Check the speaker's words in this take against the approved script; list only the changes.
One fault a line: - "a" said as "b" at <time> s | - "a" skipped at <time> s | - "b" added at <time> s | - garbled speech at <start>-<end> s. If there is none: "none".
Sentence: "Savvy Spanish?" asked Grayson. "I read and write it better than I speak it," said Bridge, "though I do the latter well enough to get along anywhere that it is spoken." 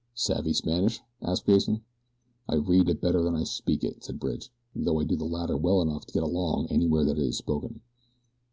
- "and write" skipped at 2.9 s